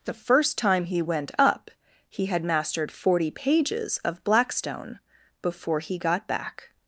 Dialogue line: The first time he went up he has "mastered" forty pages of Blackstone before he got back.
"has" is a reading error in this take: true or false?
true